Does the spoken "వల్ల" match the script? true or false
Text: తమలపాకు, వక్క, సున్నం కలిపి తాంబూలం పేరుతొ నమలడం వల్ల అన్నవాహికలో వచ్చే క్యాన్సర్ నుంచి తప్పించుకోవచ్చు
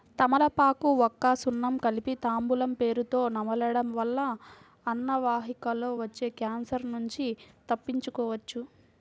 true